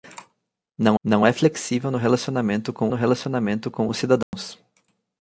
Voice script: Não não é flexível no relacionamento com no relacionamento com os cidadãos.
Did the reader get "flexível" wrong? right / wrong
right